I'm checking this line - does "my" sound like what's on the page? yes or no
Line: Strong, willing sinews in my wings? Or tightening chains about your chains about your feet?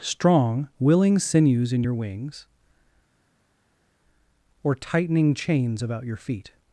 no